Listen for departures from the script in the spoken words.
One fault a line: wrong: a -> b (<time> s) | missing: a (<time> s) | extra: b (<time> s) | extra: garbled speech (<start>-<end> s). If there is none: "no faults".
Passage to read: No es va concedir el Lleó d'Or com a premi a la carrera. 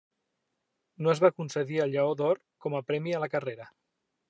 no faults